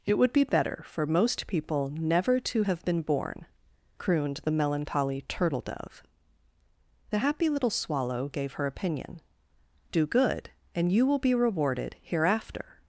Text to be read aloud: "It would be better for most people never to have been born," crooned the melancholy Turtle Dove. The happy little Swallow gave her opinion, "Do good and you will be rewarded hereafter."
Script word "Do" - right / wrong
right